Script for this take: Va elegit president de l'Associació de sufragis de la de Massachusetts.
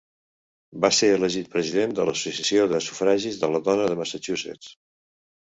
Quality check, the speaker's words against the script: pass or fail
fail